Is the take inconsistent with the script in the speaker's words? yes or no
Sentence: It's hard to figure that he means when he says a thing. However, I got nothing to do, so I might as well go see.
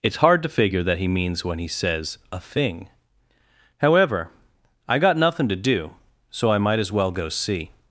no